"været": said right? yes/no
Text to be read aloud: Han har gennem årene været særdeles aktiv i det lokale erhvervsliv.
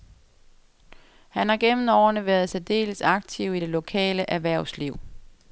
yes